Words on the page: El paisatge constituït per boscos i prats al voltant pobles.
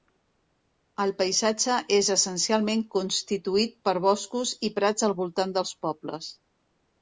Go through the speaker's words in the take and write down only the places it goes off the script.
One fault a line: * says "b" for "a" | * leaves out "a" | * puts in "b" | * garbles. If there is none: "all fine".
* puts in "és essencialment"
* puts in "dels"